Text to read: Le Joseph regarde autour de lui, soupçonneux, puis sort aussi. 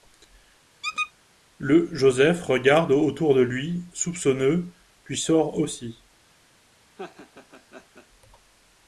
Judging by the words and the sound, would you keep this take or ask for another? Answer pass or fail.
fail